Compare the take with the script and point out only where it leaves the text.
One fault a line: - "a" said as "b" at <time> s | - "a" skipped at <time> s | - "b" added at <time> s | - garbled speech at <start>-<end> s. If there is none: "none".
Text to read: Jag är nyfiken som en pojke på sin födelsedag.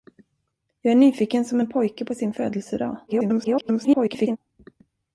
- garbled speech at 3.1-4.4 s